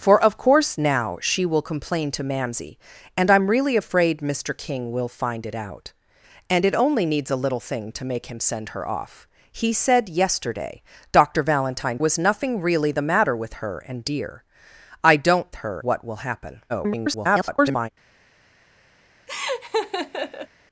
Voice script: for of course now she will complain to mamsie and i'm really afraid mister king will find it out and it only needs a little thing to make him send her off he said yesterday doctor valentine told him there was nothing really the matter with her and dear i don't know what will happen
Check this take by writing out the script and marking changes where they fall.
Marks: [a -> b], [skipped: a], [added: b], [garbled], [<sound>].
for of course now she will complain to mamsie and i'm really afraid mister king will find it out and it only needs a little thing to make him send her off he said yesterday doctor valentine [skipped: told him there] was nothing really the matter with her and dear i don't [know -> her] what will happen [garbled] [laugh]